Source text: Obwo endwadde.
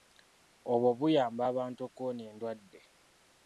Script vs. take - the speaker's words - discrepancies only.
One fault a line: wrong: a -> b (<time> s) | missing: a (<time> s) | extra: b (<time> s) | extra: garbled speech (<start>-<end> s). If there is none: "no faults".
extra: buyamba abantu okuwona (1.0 s)